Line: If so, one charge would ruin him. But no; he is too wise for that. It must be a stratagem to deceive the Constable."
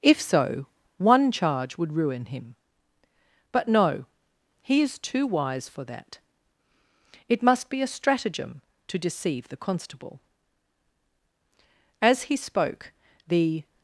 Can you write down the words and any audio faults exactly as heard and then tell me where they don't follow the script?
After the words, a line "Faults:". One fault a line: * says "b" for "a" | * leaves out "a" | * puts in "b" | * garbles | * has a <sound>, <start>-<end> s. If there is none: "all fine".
If so, one charge would ruin him. But no; he is too wise for that. It must be a stratagem to deceive the Constable." As he spoke, the
Faults:
* puts in "As he spoke the"